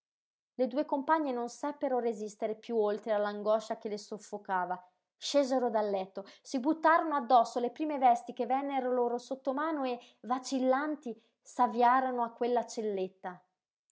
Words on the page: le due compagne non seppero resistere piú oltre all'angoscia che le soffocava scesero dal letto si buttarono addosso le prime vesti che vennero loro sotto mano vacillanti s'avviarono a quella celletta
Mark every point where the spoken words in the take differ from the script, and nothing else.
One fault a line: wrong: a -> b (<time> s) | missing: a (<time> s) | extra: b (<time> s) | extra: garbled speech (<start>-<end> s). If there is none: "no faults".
extra: e (9.8 s)